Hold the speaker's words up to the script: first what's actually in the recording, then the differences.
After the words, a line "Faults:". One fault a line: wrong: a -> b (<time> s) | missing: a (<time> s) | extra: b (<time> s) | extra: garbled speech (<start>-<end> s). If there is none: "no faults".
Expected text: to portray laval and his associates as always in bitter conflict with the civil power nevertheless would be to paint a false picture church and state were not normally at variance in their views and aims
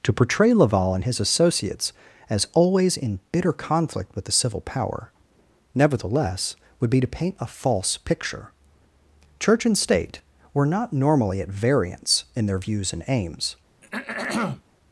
to portray laval and his associates as always in bitter conflict with the civil power nevertheless would be to paint a false picture church and state were not normally at variance in their views and aims
Faults:
no faults